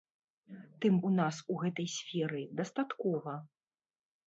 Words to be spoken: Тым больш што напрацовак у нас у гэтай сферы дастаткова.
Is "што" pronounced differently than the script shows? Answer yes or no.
yes